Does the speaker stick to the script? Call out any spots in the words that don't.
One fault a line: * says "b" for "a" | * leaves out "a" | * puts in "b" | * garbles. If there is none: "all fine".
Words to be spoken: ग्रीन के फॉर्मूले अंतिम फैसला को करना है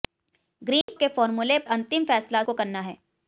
all fine